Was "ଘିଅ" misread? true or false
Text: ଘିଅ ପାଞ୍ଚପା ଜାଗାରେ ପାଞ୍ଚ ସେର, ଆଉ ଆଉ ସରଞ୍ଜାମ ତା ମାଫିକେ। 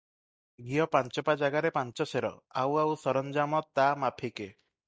false